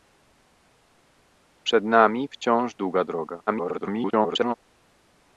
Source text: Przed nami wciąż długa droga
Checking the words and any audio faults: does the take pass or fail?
fail